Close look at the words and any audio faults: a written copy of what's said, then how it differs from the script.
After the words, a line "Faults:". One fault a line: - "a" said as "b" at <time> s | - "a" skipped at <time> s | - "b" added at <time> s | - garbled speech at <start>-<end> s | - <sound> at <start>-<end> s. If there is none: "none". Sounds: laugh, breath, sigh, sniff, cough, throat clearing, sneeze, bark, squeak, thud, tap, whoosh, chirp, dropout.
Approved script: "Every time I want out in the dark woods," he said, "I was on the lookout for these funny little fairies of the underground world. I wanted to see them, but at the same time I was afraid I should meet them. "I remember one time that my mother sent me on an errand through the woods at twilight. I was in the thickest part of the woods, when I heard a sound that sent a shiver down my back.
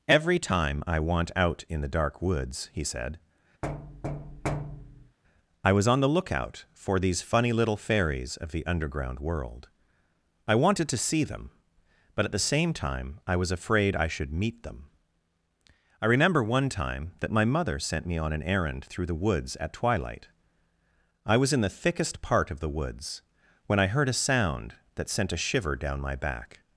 "Every time I want out in the dark woods," he said, "I was on the lookout for these funny little fairies of the underground world. I wanted to see them, but at the same time I was afraid I should meet them. "I remember one time that my mother sent me on an errand through the woods at twilight. I was in the thickest part of the woods, when I heard a sound that sent a shiver down my back.
Faults:
- thud at 3.6-5.2 s